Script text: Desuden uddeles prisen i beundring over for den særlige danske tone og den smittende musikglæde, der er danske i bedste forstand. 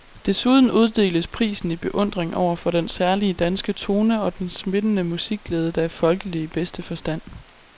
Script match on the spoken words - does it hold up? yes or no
no